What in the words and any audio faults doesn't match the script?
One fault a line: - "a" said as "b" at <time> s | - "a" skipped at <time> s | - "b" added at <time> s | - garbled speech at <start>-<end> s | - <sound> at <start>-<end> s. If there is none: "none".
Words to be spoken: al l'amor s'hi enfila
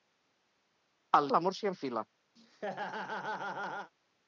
- laugh at 2.4-3.9 s